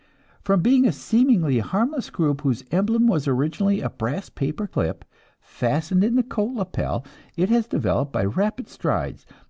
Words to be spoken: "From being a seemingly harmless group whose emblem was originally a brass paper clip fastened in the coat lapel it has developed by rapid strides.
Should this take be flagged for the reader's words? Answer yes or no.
no